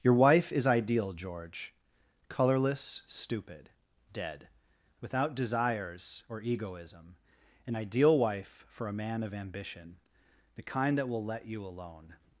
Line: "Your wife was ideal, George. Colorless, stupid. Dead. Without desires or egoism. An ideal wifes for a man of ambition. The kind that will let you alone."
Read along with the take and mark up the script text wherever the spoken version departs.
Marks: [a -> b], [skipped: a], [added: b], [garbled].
"Your wife [was -> is] ideal, George. Colorless, stupid. Dead. Without desires or egoism. An ideal [wifes -> wife] for a man of ambition. The kind that will let you alone."